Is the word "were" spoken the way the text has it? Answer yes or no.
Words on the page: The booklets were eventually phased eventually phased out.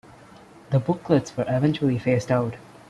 yes